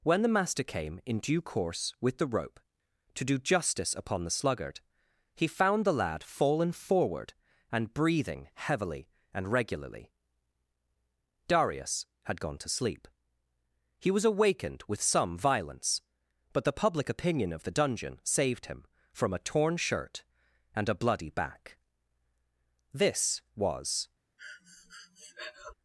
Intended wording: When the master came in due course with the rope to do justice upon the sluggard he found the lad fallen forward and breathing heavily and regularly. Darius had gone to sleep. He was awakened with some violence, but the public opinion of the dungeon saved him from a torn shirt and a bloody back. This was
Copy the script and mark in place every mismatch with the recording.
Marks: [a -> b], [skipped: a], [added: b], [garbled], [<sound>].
When the master came in due course with the rope to do justice upon the sluggard he found the lad fallen forward and breathing heavily and regularly. Darius had gone to sleep. He was awakened with some violence, but the public opinion of the dungeon saved him from a torn shirt and a bloody back. This was [breath]